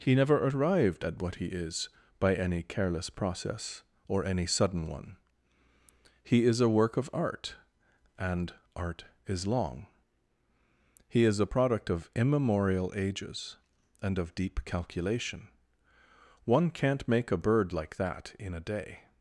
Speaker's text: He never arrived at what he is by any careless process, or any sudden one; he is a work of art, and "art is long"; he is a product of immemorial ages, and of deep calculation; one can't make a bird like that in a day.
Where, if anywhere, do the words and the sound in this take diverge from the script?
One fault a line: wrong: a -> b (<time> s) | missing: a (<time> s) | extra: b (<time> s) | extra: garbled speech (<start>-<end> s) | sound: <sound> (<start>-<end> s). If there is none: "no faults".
no faults